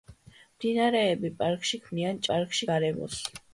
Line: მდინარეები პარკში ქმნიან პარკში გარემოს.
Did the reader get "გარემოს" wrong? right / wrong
right